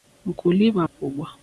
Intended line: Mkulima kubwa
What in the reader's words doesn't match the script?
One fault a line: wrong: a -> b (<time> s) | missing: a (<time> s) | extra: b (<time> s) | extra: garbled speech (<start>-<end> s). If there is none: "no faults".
no faults